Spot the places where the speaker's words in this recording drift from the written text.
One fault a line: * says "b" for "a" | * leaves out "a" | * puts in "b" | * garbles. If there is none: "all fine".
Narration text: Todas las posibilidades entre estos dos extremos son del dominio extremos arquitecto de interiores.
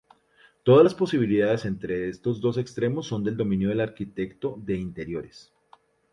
* says "del" for "extremos"